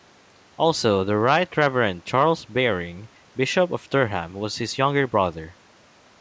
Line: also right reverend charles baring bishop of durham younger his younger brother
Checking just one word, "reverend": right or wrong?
right